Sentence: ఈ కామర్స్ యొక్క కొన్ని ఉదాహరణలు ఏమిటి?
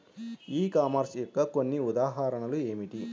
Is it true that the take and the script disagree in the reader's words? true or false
false